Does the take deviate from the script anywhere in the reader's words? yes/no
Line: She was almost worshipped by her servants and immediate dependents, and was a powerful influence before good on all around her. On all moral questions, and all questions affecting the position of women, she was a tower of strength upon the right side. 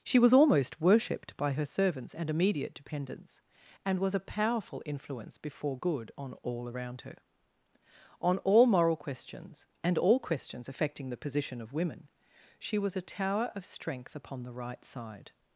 no